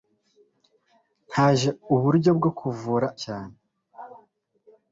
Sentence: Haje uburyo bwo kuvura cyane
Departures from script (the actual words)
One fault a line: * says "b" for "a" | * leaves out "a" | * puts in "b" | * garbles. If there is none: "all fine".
all fine